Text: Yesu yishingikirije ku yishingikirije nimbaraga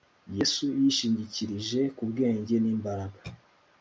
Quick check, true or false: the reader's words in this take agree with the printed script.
false